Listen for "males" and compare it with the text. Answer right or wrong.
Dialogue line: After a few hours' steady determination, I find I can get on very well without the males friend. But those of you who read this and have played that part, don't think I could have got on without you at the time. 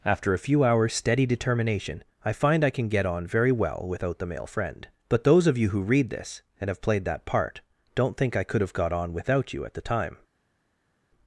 wrong